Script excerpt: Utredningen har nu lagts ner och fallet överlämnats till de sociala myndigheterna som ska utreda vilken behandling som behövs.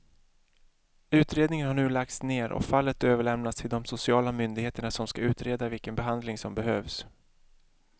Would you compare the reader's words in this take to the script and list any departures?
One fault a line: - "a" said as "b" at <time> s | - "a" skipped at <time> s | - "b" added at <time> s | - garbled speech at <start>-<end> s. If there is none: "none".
none